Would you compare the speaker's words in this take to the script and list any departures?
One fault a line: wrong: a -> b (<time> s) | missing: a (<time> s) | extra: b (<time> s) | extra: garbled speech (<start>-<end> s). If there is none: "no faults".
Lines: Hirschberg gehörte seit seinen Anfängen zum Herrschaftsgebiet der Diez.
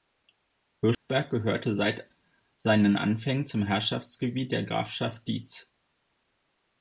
extra: Grafschaft (4.6 s)